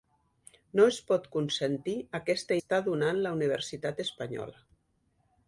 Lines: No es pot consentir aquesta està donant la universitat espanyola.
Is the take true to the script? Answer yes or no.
yes